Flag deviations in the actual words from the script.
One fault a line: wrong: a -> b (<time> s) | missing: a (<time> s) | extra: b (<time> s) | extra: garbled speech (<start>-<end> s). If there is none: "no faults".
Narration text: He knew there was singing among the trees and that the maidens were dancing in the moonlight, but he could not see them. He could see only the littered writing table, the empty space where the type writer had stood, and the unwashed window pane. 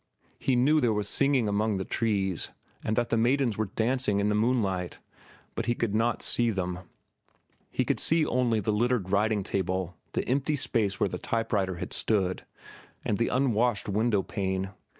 no faults